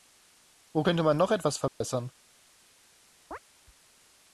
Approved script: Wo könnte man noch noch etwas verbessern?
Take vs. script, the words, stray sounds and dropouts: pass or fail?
fail